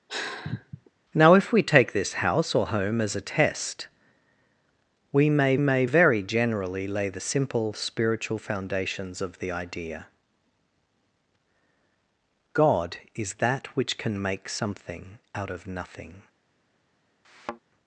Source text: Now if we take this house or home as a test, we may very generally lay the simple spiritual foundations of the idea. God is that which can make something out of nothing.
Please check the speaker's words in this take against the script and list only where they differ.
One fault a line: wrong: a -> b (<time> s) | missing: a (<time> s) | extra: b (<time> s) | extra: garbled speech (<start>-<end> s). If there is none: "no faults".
extra: may (5.6 s)